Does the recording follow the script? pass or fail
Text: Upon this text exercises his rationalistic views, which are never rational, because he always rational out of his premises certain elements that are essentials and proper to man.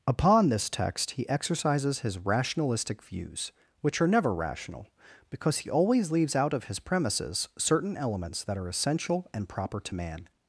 fail